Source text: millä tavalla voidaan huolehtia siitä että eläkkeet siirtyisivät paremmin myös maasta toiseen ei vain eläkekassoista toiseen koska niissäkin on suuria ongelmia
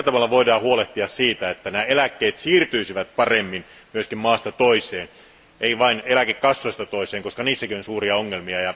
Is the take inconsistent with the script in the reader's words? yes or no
no